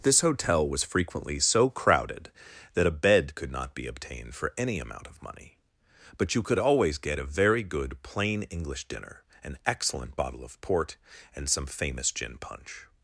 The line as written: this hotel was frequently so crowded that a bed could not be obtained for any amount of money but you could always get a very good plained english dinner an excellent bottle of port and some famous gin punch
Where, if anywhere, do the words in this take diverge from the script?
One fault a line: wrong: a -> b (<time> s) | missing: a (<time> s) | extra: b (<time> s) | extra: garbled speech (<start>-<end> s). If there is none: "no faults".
wrong: plained -> plain (8.0 s)